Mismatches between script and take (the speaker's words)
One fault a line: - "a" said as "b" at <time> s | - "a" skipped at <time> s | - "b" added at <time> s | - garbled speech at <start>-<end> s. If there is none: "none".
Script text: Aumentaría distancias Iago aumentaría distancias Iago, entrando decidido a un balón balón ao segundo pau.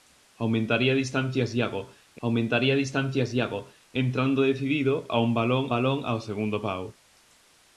none